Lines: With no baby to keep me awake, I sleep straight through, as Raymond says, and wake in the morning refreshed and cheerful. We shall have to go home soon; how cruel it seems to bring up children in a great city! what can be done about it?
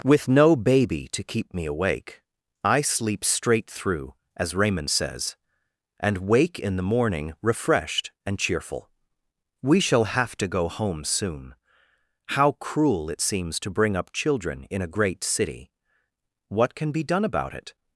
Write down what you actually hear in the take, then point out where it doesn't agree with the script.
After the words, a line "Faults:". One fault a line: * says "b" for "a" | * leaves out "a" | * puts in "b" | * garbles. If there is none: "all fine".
With no baby to keep me awake, I sleep straight through, as Raymond says, and wake in the morning refreshed and cheerful. We shall have to go home soon; how cruel it seems to bring up children in a great city! what can be done about it?
Faults:
all fine